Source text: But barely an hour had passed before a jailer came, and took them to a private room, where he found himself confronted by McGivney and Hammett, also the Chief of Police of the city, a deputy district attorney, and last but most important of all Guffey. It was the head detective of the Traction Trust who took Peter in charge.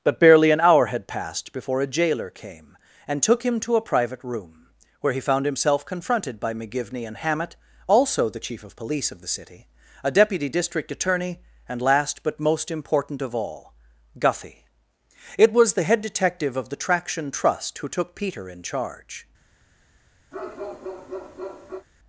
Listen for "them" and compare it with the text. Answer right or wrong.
wrong